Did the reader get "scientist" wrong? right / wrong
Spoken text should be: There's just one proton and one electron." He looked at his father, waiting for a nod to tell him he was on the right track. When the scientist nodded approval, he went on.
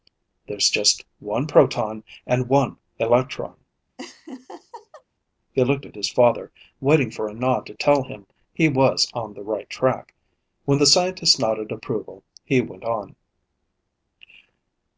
right